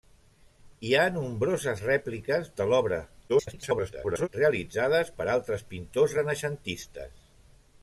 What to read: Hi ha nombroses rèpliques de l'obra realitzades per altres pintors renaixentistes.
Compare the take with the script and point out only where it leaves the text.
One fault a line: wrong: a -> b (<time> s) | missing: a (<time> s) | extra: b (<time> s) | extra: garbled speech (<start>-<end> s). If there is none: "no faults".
extra: garbled speech (3.3-4.3 s)